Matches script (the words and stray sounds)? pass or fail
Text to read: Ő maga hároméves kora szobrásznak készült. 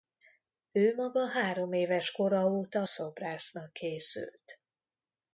fail